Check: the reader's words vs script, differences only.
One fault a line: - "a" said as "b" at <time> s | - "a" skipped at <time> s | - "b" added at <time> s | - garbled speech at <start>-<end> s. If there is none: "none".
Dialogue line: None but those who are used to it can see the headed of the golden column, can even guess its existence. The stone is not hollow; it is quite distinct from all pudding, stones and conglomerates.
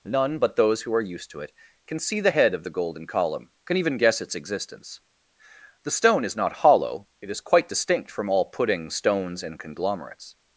- "headed" said as "head" at 2.3 s